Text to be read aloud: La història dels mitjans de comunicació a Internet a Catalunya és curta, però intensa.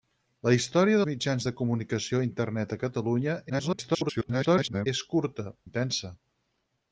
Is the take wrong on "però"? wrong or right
wrong